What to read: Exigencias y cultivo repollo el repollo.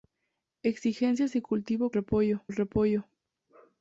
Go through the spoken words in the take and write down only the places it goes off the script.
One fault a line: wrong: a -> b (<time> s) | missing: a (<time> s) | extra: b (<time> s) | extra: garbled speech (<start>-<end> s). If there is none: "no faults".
no faults